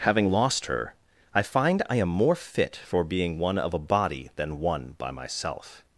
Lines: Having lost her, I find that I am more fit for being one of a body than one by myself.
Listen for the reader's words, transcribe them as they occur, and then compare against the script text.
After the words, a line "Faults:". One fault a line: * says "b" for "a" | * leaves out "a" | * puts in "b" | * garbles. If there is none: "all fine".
Having lost her, I find I am more fit for being one of a body than one by myself.
Faults:
* leaves out "that"